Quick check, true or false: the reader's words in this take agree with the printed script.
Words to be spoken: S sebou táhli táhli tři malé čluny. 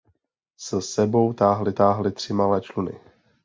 true